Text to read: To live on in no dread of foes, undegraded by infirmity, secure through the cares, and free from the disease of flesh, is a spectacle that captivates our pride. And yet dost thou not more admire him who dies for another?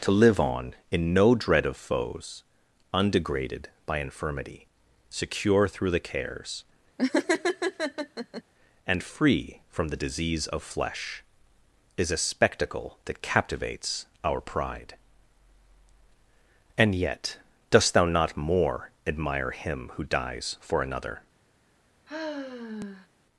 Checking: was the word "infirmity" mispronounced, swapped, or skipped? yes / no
no